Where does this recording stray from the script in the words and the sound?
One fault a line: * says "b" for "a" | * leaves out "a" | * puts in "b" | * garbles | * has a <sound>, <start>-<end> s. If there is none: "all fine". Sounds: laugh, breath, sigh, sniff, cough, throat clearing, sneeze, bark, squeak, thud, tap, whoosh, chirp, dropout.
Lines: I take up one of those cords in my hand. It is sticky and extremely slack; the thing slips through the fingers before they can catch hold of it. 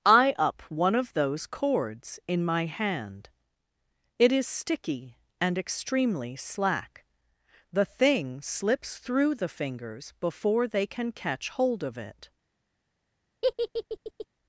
* leaves out "take"
* has a laugh, 13.4-14.3 s